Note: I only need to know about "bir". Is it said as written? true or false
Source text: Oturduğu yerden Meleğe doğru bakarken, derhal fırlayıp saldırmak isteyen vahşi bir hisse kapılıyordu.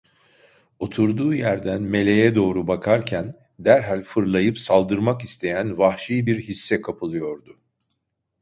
true